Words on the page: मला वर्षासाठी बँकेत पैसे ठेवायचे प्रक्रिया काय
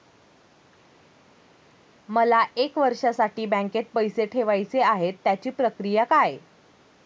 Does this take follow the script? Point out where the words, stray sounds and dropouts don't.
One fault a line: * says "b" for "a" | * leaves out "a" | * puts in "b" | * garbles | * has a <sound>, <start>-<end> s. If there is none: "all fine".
* puts in "एक"
* puts in "आहेत त्याची"